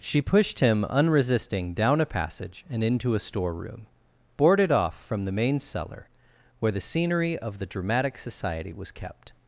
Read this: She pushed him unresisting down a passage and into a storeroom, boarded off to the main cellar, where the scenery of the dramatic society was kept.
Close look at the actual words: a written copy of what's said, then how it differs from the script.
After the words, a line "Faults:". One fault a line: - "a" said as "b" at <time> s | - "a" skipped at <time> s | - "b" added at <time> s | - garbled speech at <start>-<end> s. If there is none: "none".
She pushed him unresisting down a passage and into a storeroom, boarded off from the main cellar, where the scenery of the dramatic society was kept.
Faults:
- "to" said as "from" at 5.0 s